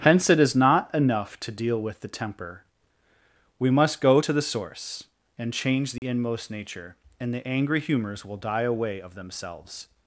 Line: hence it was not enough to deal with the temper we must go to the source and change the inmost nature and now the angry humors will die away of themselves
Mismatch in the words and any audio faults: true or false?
true